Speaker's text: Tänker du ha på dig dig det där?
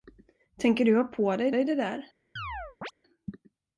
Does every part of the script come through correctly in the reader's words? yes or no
yes